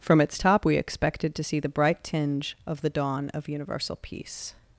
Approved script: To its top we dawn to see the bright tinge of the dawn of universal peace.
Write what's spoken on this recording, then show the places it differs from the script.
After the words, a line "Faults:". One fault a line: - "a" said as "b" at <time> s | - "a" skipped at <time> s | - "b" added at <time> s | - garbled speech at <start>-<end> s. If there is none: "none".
From its top we expected to see the bright tinge of the dawn of universal peace.
Faults:
- "To" said as "From" at 0.0 s
- "dawn" said as "expected" at 0.8 s